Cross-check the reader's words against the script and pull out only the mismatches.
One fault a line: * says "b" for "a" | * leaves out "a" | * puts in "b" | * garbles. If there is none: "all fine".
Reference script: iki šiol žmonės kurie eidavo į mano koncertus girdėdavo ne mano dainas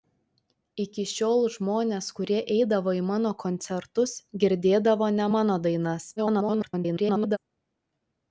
* garbles